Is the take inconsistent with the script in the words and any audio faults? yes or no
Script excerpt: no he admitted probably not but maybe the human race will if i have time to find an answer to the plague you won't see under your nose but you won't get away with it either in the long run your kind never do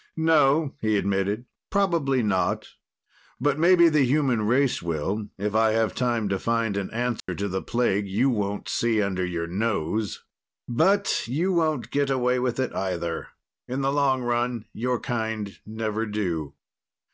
yes